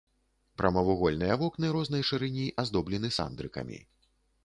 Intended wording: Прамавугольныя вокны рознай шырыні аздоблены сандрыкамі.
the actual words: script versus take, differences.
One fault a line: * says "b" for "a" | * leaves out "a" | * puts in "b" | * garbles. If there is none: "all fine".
all fine